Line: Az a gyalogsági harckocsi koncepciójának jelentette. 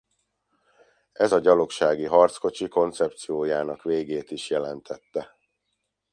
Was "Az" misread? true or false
true